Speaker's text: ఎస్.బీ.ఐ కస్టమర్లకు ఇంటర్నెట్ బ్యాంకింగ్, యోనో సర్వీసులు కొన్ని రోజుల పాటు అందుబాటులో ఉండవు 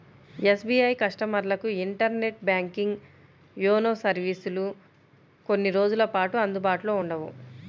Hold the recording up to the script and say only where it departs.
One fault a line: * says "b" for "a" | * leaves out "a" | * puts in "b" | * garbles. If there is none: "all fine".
all fine